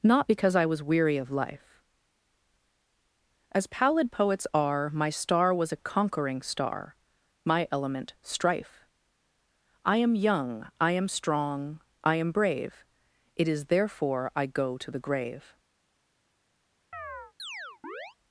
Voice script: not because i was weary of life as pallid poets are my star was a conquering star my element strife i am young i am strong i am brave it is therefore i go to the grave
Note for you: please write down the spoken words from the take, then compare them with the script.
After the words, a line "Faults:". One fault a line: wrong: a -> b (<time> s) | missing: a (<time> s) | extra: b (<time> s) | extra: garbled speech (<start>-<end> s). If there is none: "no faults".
not because i was weary of life as pallid poets are my star was a conquering star my element strife i am young i am strong i am brave it is therefore i go to the grave
Faults:
no faults